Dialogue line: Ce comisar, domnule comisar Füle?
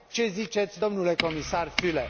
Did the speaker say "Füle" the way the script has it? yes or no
yes